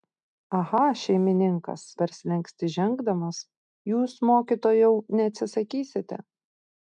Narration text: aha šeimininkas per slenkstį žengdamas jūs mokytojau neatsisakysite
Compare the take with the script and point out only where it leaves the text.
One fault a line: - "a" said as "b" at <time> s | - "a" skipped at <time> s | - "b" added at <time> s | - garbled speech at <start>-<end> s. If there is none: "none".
none